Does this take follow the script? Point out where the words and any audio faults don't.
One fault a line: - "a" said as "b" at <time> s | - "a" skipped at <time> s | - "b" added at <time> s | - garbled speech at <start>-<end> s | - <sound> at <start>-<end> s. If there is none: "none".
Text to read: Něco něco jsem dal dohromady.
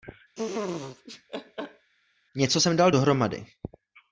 - laugh at 0.4-1.9 s
- "něco" skipped at 2.6 s